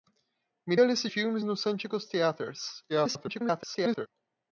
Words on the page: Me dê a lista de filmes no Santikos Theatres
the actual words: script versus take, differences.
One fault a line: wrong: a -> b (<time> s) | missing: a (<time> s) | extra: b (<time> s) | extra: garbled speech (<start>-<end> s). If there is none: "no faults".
missing: dê (0.8 s)
missing: de (1.1 s)
extra: garbled speech (2.9-4.1 s)